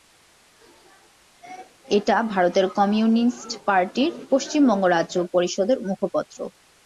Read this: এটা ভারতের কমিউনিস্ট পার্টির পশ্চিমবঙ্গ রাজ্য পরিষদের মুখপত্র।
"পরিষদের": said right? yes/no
yes